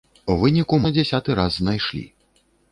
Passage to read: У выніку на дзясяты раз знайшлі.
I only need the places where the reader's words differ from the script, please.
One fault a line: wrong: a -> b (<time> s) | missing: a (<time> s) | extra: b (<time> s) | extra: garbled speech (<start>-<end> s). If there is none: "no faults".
no faults